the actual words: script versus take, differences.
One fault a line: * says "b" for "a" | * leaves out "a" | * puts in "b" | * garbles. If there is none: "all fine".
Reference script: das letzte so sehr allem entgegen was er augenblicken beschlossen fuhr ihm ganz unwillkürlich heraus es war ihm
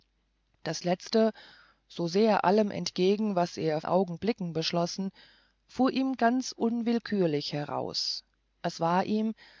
all fine